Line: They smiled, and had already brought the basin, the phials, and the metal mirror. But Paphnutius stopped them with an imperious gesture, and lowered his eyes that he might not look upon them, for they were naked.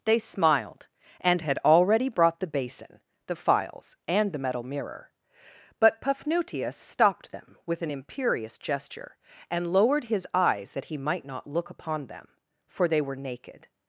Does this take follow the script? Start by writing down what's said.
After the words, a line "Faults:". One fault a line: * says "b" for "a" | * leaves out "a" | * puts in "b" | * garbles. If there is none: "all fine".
They smiled, and had already brought the basin, the phials, and the metal mirror. But Paphnutius stopped them with an imperious gesture, and lowered his eyes that he might not look upon them, for they were naked.
Faults:
all fine